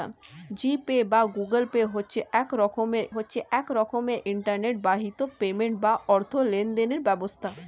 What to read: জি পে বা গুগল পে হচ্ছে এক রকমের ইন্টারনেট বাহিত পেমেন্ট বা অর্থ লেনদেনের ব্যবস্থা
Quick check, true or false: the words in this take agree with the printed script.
false